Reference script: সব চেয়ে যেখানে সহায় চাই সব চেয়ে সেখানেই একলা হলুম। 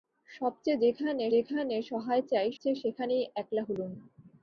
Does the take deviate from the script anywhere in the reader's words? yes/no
yes